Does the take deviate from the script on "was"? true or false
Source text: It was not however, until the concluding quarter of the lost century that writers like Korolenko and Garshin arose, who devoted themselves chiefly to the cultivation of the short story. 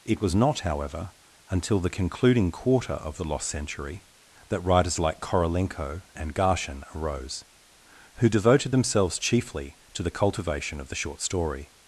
false